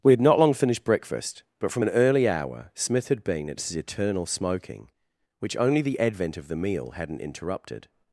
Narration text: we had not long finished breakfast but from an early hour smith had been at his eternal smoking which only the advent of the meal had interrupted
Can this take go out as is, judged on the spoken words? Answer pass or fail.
fail